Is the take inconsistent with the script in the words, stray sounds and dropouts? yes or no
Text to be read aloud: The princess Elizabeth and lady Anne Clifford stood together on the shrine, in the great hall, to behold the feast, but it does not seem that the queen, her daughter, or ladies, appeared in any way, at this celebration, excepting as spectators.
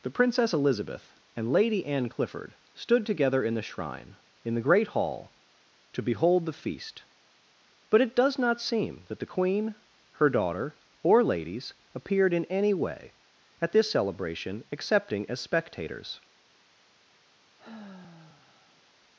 yes